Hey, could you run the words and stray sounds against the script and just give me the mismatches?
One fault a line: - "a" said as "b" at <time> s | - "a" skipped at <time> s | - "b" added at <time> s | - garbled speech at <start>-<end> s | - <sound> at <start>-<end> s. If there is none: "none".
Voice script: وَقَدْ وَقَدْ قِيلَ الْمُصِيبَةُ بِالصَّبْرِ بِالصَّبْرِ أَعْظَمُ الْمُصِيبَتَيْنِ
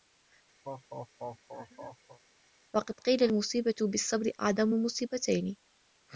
- laugh at 0.6-2.2 s
- "وَقَدْ" skipped at 2.9 s
- "بِالصَّبْرِ" skipped at 4.3 s